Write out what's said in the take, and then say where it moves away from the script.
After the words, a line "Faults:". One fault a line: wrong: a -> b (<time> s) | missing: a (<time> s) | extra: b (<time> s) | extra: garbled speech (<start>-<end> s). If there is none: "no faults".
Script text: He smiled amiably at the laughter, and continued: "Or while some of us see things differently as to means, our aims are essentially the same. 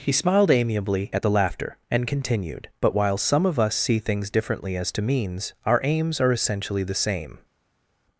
He smiled amiably at the laughter, and continued: "But while some of us see things differently as to means, our aims are essentially the same.
Faults:
wrong: Or -> But (2.8 s)